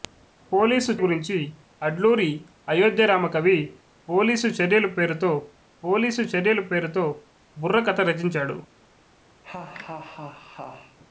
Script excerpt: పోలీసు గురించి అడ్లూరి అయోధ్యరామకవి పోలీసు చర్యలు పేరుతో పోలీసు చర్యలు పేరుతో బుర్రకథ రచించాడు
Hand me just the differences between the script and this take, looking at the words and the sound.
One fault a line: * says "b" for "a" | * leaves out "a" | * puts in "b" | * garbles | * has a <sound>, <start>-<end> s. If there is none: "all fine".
* has a laugh, 9.4-11.0 s